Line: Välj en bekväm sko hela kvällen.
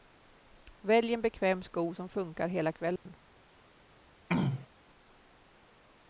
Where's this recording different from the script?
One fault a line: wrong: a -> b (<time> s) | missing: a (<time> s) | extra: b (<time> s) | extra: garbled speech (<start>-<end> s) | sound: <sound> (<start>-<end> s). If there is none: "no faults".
extra: som funkar (1.9 s)
sound: dropout (3.0-3.1 s)
sound: throat clearing (4.3-4.7 s)